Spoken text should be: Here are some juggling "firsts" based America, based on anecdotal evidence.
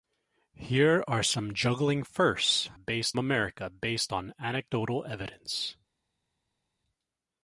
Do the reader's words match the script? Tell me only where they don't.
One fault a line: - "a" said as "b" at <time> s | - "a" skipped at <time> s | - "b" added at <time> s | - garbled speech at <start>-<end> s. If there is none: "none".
none